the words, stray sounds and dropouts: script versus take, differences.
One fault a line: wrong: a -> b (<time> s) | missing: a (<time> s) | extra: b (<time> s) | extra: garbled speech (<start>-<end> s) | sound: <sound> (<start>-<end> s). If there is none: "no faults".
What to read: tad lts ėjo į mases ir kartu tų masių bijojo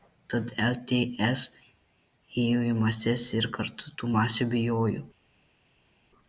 no faults